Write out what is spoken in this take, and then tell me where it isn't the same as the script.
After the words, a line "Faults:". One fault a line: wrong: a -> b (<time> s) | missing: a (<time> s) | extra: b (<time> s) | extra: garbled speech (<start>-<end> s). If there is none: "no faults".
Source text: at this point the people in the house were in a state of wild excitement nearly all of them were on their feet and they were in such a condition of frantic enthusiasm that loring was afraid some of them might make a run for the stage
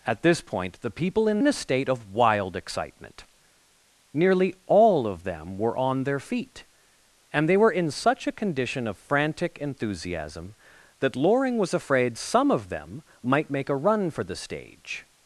at this point the people in in a state of wild excitement nearly all of them were on their feet and they were in such a condition of frantic enthusiasm that loring was afraid some of them might make a run for the stage
Faults:
missing: the house were (1.4 s)